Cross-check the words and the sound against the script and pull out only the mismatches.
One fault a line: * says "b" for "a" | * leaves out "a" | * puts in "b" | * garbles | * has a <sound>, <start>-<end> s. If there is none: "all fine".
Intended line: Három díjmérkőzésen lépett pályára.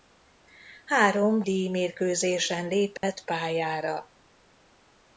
* has a dropout, 3.0-3.0 s